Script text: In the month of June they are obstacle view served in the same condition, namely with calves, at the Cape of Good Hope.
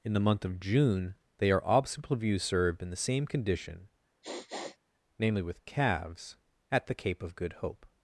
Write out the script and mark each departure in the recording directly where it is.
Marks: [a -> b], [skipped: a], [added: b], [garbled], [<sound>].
In the month of June they are obstacle view served in the same condition, [sniff] namely with calves, at the Cape of Good Hope.